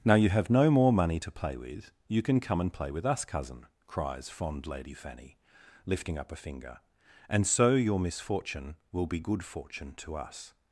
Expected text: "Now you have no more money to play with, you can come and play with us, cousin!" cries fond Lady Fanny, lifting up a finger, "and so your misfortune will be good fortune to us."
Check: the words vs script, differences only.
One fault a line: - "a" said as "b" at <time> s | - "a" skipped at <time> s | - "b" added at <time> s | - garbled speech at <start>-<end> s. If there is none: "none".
none